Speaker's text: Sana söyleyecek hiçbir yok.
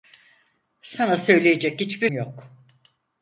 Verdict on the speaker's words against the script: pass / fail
pass